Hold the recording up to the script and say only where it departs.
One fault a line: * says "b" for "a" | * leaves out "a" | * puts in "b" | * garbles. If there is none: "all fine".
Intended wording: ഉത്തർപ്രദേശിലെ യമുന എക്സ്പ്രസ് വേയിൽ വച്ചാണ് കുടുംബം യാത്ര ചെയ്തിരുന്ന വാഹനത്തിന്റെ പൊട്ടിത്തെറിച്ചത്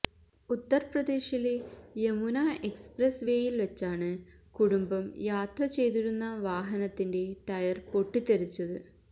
* puts in "ടയർ"